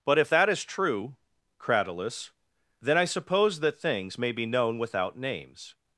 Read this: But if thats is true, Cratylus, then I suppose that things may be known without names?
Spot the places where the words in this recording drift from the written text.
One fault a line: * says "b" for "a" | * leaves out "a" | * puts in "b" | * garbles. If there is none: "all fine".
* says "that" for "thats"